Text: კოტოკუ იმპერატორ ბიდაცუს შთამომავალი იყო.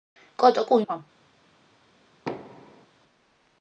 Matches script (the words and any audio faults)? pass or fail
fail